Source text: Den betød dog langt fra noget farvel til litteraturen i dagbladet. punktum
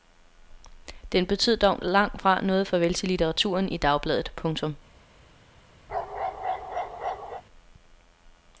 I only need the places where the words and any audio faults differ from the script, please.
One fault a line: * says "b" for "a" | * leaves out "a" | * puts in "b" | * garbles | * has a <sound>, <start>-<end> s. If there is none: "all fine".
* has a bark, 5.9-7.4 s